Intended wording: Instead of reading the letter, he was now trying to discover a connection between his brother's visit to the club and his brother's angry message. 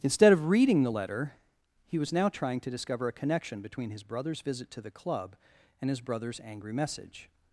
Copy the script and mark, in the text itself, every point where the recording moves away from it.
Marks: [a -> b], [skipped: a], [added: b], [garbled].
Instead of reading the letter, he was now trying to discover a connection between his brother's visit to the club and his brother's angry message.